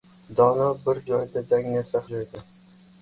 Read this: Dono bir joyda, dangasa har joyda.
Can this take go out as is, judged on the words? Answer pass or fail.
fail